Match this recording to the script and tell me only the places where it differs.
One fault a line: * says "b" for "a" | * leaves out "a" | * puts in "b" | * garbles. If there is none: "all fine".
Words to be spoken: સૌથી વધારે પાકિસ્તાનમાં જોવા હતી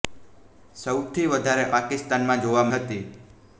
all fine